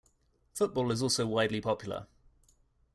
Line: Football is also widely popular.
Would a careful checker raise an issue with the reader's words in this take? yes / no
no